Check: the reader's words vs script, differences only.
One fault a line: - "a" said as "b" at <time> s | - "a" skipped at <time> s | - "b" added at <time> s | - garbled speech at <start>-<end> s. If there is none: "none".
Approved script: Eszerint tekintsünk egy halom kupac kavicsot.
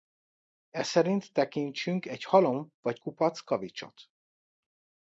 - "vagy" added at 2.8 s